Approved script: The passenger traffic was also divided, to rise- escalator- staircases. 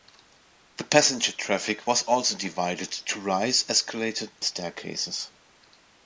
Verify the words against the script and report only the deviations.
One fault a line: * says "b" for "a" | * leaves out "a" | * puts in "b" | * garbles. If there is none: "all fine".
all fine